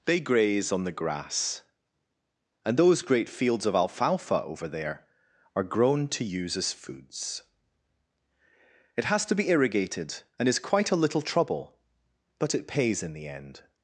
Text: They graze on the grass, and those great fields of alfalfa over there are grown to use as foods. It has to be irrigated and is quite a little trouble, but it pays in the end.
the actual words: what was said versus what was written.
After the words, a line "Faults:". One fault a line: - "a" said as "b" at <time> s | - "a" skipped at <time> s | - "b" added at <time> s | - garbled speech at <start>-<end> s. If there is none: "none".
They graze on the grass, and those great fields of alfalfa over there are grown to use as foods. It has to be irrigated and is quite a little trouble, but it pays in the end.
Faults:
none